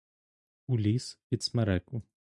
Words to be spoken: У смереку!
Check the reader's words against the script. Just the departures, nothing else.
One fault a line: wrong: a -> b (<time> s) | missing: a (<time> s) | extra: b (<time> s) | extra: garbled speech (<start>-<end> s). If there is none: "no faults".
extra: ліс під (0.8 s)